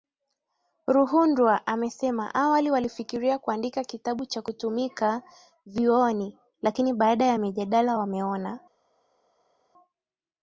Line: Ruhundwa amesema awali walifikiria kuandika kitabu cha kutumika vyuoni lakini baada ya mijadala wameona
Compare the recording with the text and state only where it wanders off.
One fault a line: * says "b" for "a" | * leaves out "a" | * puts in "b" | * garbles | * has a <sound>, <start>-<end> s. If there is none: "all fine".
all fine